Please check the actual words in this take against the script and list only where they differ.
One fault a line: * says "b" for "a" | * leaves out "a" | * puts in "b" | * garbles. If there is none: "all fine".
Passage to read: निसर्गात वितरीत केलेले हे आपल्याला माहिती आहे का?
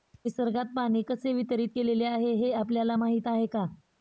* puts in "पाणी कसे"
* puts in "आहे"